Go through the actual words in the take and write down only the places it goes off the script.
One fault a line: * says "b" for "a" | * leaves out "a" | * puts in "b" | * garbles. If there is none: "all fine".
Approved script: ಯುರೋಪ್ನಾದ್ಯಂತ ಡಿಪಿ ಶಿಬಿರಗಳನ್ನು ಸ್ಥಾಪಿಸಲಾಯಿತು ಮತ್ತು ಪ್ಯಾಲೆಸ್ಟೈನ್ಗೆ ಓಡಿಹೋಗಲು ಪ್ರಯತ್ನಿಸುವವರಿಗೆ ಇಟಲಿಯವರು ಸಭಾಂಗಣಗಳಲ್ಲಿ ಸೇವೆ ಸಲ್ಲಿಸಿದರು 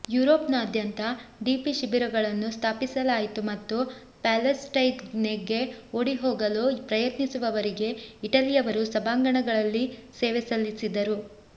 all fine